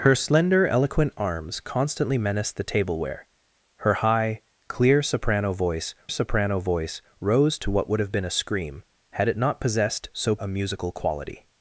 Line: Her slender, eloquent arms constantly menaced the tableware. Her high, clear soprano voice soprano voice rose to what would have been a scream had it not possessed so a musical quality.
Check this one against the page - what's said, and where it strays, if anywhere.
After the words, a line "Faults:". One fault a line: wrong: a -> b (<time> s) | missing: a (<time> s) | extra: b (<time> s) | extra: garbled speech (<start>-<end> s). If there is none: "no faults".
Her slender, eloquent arms constantly menaced the tableware. Her high, clear soprano voice soprano voice rose to what would have been a scream had it not possessed so a musical quality.
Faults:
no faults